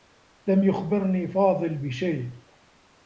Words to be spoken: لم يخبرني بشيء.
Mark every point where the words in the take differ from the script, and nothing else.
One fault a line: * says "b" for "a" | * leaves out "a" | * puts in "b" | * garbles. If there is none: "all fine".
* puts in "فاضل"